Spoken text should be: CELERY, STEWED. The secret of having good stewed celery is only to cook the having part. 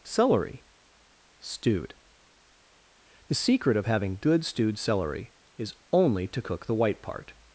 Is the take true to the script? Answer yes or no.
no